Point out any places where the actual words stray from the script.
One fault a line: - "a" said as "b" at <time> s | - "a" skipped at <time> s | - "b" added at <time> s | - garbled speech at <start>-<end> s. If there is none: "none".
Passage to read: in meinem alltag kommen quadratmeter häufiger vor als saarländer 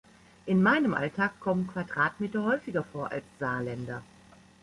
none